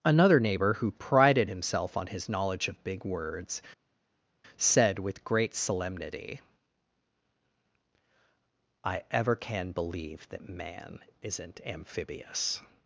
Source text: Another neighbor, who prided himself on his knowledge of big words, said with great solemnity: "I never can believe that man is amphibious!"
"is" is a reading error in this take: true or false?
true